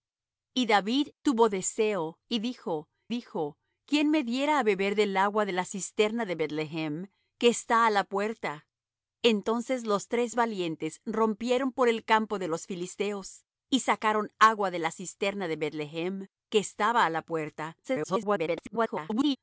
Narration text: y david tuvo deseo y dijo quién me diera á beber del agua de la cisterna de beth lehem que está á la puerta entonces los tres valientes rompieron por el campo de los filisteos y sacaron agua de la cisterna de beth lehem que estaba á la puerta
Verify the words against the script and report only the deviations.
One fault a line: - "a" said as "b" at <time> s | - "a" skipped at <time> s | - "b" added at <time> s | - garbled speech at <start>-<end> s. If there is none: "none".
- "dijo" added at 3.1 s
- garbled speech at 17.8-19.4 s